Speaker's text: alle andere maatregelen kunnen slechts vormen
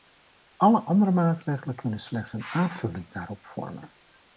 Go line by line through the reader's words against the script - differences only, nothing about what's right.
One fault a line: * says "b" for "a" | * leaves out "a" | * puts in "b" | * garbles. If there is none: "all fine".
* puts in "een aanvulling daarop"